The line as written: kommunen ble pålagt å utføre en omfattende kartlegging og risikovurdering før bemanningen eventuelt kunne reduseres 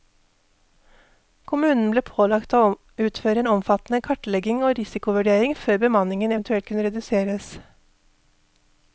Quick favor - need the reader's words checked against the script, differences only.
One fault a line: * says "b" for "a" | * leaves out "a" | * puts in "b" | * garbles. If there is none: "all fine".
all fine